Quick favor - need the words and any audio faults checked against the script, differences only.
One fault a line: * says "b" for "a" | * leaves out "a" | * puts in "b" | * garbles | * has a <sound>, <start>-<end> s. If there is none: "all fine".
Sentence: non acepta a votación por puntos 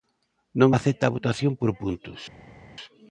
all fine